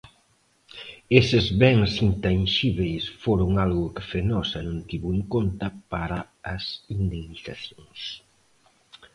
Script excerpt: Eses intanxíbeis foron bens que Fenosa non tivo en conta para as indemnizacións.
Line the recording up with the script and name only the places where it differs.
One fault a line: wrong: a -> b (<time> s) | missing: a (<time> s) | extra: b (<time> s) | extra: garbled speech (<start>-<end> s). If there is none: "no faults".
extra: bens (1.6 s)
wrong: bens -> algo (3.6 s)